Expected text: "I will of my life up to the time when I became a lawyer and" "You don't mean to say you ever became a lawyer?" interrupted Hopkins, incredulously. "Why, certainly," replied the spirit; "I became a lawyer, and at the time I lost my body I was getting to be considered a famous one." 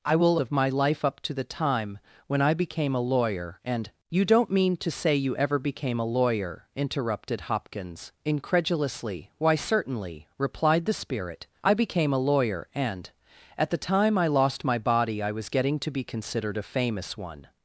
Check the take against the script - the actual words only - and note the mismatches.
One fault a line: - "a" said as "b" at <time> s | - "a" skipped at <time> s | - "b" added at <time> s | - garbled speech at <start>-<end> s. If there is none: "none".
none